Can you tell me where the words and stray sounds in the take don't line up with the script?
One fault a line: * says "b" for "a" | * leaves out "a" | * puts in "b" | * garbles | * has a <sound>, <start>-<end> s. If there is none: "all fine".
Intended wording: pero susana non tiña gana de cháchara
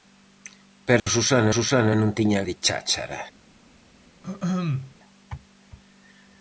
* has a dropout, 1.0-1.1 s
* puts in "susana"
* leaves out "gana"
* has a throat clearing, 4.2-5.0 s